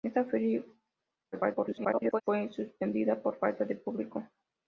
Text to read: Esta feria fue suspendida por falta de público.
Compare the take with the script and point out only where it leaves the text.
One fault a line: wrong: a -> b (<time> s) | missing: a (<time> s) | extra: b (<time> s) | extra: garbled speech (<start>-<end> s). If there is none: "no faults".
extra: garbled speech (1.3-2.2 s)